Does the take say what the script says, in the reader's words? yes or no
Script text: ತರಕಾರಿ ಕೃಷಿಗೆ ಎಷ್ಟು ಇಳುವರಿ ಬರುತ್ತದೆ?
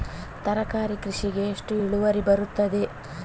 yes